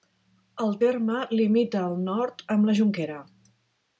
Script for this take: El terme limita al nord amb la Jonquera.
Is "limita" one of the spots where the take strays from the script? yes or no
no